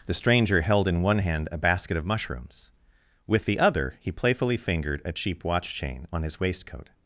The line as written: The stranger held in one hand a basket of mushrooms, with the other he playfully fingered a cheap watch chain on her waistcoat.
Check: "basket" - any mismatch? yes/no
no